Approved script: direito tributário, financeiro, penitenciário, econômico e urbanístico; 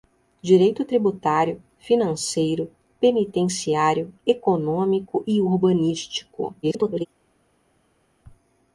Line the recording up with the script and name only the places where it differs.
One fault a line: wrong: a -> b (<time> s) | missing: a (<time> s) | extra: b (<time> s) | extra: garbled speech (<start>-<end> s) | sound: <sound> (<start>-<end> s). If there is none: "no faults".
extra: garbled speech (6.6-7.1 s)